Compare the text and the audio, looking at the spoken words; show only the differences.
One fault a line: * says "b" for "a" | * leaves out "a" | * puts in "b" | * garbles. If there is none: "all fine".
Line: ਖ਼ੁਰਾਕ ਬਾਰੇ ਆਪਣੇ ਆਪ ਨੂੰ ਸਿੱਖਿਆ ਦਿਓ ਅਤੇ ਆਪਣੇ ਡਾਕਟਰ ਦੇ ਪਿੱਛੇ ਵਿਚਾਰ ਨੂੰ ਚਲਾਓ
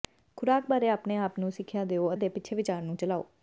* leaves out "ਅਤੇ ਆਪਣੇ ਡਾਕਟਰ"